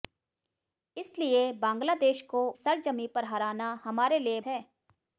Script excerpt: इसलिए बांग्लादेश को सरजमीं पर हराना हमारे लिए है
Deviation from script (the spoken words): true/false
false